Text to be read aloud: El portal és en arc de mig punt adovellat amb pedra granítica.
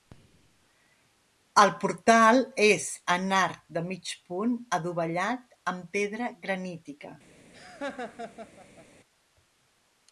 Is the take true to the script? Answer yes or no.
yes